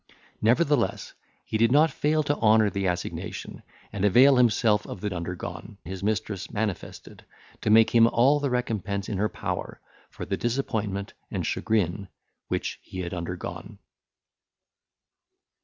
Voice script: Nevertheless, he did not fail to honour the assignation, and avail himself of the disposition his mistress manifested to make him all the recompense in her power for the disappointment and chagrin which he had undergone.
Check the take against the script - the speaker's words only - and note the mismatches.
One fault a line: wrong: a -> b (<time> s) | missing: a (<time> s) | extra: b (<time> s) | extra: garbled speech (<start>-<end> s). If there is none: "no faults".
wrong: disposition -> undergone (5.1 s)